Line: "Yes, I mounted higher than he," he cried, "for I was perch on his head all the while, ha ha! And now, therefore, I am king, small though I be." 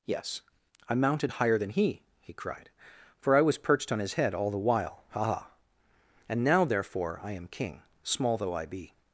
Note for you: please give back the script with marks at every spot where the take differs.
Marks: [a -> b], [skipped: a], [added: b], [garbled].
"Yes, I mounted higher than he," he cried, "for I was [perch -> perched] on his head all the while, ha ha! And now, therefore, I am king, small though I be."